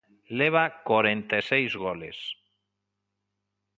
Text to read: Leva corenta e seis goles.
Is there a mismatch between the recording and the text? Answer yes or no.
no